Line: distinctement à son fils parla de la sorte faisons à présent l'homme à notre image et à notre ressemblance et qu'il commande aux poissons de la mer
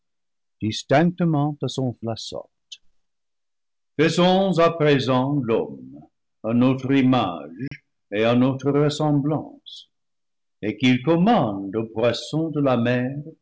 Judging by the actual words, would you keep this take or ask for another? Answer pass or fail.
fail